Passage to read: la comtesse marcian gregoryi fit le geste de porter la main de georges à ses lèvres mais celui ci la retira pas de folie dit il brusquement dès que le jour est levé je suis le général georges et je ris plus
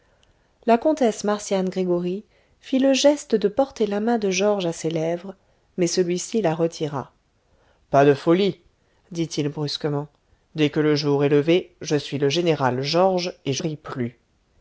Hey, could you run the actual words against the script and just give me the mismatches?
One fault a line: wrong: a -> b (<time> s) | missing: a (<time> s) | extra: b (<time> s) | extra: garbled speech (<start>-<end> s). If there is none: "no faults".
no faults